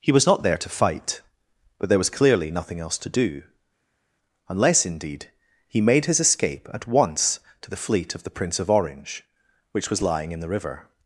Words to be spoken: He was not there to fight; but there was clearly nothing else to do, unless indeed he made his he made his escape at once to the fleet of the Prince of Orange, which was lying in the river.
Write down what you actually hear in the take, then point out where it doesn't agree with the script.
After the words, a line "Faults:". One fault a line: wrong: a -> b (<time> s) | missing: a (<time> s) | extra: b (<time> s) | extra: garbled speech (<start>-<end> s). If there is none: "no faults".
He was not there to fight; but there was clearly nothing else to do, unless indeed he made his escape at once to the fleet of the Prince of Orange, which was lying in the river.
Faults:
missing: he made his (6.2 s)